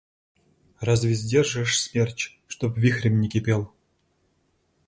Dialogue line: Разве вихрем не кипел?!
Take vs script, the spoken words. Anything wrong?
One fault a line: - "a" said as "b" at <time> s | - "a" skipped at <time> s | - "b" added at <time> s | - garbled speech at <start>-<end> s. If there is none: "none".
- "сдержишь смерч чтоб" added at 1.1 s